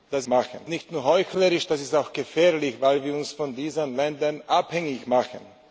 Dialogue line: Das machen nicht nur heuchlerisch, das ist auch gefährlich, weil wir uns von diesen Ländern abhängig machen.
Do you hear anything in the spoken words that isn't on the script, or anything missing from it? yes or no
no